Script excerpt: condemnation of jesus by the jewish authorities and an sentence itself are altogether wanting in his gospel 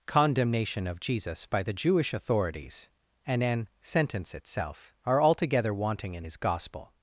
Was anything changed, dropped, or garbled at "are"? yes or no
no